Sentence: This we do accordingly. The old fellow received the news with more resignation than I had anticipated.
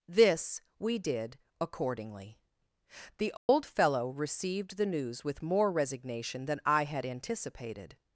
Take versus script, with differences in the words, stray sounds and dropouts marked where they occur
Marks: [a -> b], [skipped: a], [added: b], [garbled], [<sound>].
This we [do -> did] accordingly. The old [dropout] fellow received the news with more resignation than I had anticipated.